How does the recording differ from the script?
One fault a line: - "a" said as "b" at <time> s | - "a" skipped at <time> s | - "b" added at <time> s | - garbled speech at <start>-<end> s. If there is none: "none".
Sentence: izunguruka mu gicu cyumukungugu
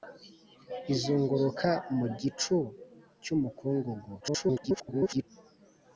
- garbled speech at 4.2-5.2 s